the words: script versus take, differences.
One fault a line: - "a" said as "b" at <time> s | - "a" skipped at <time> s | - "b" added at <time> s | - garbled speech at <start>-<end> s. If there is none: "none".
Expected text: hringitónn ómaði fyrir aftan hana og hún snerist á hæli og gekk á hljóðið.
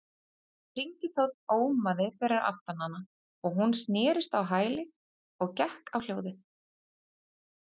none